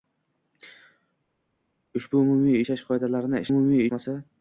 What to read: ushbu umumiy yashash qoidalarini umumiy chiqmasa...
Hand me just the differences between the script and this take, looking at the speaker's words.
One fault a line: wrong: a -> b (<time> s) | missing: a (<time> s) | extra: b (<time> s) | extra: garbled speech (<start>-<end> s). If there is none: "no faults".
no faults